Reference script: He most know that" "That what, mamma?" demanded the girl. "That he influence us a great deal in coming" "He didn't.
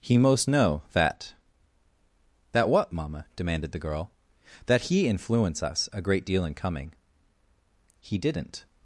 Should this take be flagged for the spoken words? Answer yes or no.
no